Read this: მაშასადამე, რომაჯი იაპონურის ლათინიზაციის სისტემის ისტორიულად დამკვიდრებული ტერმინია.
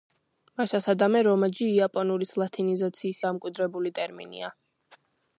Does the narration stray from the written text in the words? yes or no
yes